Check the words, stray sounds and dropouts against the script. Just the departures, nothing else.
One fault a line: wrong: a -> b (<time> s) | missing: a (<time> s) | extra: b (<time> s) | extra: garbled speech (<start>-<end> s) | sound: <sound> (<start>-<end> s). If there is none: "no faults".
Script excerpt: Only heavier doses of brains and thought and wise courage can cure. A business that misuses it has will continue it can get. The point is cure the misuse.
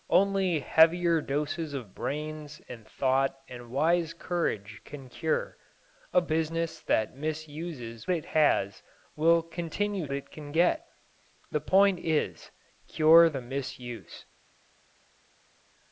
no faults